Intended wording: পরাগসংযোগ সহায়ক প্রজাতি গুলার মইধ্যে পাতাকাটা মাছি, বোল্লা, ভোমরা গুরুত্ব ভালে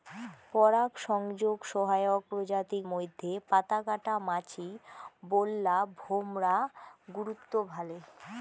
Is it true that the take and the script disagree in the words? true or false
true